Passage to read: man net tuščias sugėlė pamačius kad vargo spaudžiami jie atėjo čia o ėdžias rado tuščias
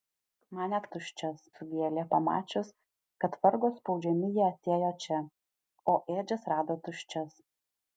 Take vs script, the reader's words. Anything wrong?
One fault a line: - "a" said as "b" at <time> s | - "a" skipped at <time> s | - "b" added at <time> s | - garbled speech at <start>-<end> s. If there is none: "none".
none